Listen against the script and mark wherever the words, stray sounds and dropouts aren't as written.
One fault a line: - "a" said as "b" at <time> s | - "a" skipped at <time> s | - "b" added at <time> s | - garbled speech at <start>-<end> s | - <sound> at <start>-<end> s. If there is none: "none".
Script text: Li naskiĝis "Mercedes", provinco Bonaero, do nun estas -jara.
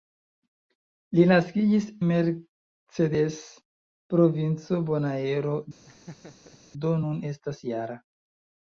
- laugh at 5.9-6.6 s